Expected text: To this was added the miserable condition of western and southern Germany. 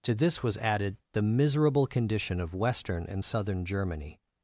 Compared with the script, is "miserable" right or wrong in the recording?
right